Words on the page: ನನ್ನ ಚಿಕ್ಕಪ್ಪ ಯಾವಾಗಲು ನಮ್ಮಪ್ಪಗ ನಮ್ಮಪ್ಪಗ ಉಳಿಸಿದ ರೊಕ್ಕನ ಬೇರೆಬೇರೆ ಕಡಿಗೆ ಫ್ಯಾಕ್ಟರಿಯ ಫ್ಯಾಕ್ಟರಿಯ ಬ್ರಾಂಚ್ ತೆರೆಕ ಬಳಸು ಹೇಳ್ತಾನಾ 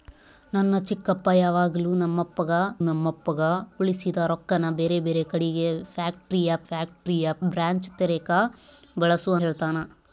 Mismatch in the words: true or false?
false